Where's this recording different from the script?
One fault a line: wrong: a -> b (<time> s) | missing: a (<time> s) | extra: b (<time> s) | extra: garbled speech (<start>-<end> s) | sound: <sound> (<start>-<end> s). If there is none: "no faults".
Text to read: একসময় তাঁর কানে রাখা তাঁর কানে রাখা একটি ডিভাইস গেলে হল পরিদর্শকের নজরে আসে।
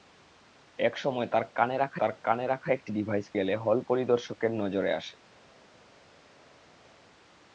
no faults